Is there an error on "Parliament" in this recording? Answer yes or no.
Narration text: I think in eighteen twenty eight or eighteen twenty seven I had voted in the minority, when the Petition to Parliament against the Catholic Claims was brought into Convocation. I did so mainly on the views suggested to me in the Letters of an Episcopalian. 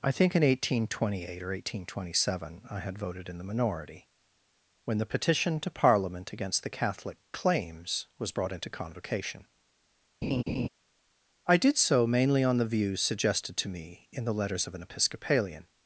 no